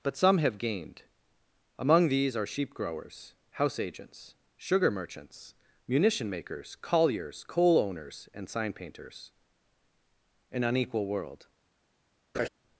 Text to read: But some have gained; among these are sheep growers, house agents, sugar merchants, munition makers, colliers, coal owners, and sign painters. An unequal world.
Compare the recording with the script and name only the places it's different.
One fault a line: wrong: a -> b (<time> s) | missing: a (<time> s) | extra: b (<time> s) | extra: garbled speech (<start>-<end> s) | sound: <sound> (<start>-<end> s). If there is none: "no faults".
sound: laugh (12.3-12.5 s)